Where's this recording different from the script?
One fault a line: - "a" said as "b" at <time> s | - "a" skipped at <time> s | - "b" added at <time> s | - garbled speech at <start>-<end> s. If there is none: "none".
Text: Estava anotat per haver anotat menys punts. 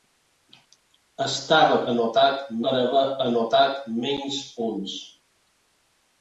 none